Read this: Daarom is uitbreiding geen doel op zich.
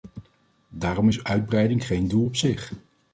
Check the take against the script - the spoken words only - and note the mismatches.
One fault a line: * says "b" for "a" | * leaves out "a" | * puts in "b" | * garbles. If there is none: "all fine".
all fine